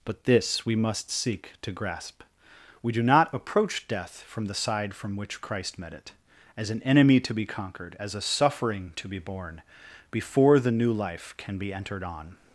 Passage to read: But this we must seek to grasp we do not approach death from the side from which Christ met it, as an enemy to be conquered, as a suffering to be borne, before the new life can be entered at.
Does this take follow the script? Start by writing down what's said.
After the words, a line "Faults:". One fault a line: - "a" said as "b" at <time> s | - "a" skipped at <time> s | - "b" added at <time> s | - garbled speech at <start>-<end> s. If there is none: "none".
But this we must seek to grasp we do not approach death from the side from which Christ met it, as an enemy to be conquered, as a suffering to be borne, before the new life can be entered on.
Faults:
- "at" said as "on" at 12.0 s